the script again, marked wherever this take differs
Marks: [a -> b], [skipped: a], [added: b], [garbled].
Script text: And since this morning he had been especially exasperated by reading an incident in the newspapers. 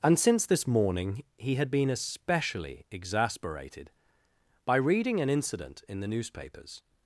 And since this morning he had been especially exasperated by reading an incident in the newspapers.